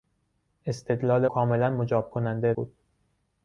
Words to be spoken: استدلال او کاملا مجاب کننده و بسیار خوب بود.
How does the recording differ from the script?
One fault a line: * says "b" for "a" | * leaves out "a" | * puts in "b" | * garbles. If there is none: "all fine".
* leaves out "او"
* leaves out "و بسیار خوب"